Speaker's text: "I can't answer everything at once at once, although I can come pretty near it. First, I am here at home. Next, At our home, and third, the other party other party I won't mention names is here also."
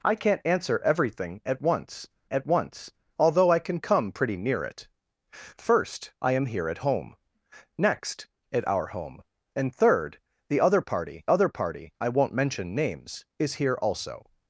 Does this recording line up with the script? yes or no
yes